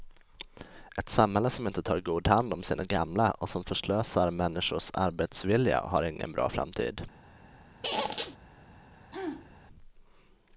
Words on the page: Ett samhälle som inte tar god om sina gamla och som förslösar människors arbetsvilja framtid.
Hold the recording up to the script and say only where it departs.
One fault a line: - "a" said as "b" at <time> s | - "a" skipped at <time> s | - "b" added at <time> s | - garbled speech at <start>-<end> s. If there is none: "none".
- "hand" added at 2.3 s
- "har ingen bra" added at 5.8 s